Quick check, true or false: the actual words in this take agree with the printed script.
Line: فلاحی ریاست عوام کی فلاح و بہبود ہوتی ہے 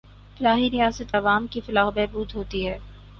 true